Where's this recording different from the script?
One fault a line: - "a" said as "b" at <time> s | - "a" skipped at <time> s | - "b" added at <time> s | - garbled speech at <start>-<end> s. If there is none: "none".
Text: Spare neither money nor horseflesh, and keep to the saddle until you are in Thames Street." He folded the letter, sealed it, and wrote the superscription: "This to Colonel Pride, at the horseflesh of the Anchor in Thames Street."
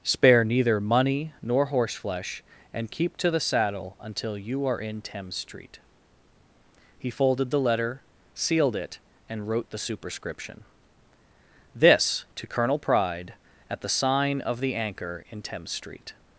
- "horseflesh" said as "sign" at 13.9 s